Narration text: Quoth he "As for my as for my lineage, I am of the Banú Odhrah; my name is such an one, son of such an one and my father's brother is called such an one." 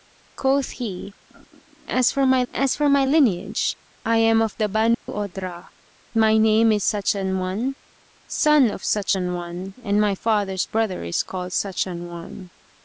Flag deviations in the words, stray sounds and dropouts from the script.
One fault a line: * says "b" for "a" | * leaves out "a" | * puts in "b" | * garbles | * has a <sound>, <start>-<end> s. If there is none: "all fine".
* has a dropout, 4.9-5.1 s